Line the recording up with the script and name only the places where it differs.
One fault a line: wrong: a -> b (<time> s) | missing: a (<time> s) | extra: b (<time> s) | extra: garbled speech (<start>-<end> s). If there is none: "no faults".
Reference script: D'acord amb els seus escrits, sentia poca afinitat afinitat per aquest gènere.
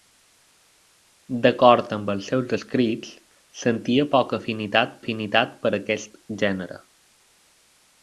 no faults